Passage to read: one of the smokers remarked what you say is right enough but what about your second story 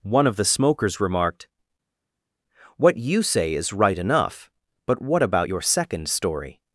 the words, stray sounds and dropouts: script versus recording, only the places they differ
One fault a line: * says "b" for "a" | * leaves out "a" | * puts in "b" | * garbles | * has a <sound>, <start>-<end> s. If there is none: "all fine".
all fine